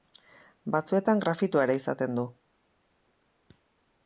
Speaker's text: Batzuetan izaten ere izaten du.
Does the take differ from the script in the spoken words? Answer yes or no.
yes